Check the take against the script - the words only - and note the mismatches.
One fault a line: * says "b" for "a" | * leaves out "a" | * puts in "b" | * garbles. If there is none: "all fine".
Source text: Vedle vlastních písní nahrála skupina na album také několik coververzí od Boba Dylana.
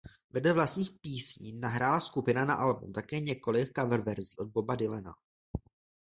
all fine